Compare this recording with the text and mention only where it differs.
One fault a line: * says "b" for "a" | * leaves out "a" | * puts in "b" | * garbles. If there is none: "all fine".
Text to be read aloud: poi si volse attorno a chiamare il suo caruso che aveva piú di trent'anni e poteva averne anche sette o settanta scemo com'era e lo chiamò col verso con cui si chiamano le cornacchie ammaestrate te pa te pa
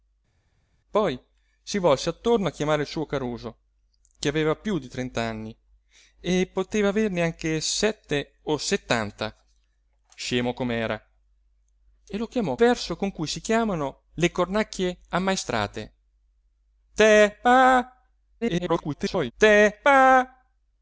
* leaves out "col"
* garbles